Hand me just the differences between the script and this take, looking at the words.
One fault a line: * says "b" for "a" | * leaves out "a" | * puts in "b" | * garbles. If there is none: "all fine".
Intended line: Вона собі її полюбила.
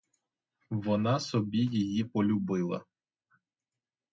all fine